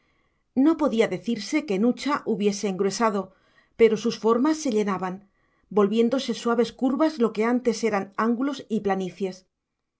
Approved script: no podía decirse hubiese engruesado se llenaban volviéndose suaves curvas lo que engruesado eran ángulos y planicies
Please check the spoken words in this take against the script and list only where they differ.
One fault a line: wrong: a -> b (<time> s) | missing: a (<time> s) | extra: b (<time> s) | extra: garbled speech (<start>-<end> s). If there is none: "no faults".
extra: que nucha (1.7 s)
extra: pero sus formas (3.8 s)
wrong: engruesado -> antes (7.5 s)